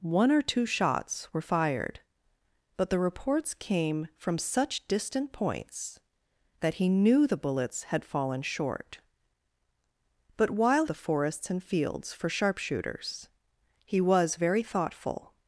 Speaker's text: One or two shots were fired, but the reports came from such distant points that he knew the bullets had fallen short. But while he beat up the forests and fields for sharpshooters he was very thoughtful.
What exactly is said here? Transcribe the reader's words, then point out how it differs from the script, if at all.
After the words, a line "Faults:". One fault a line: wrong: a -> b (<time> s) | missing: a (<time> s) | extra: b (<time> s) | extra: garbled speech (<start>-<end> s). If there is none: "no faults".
One or two shots were fired, but the reports came from such distant points that he knew the bullets had fallen short. But while the forests and fields for sharpshooters he was very thoughtful.
Faults:
missing: he beat up (10.8 s)